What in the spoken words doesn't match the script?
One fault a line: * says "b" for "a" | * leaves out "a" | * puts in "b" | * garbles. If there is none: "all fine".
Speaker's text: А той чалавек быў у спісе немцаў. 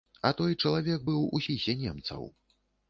all fine